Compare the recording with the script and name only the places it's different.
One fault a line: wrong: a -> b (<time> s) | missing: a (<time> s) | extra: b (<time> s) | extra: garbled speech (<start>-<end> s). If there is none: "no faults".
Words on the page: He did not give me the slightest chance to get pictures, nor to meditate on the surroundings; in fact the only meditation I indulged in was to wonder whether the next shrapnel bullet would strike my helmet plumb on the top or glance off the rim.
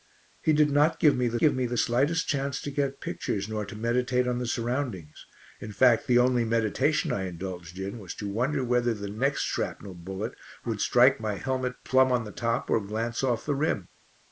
extra: give me the (1.4 s)